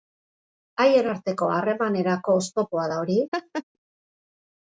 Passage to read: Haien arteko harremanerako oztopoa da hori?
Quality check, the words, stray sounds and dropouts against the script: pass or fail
fail